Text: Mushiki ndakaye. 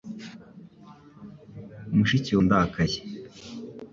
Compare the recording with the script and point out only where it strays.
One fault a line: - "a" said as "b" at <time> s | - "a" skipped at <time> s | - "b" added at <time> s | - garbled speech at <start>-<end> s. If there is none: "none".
none